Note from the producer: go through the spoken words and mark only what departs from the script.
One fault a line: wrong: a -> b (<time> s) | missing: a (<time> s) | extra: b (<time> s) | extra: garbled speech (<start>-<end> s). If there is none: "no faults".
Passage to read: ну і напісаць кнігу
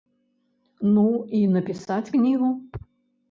no faults